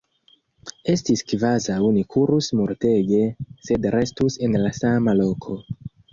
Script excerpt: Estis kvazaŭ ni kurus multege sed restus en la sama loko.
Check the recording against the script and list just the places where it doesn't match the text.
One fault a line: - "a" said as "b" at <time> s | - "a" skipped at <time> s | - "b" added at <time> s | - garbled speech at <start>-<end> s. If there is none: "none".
none